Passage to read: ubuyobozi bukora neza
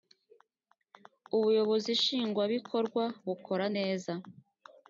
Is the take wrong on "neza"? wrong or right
right